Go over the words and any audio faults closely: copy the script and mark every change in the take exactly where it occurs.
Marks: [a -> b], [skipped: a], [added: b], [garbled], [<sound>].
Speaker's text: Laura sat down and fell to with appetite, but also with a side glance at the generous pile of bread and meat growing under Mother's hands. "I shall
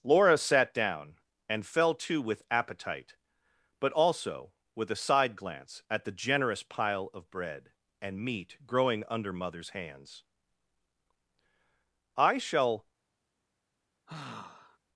Laura sat down and fell to with appetite, but also with a side glance at the generous pile of bread and meat growing under Mother's hands. "I shall [sigh]